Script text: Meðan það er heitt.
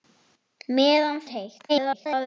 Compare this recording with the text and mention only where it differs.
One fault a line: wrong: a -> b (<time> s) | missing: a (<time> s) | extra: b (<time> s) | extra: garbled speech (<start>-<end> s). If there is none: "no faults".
missing: það (1.2 s)
extra: garbled speech (1.7-2.3 s)